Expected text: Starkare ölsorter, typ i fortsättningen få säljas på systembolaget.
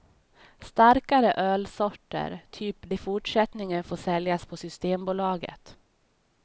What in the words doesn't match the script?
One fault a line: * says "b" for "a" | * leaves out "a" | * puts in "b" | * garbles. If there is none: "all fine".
all fine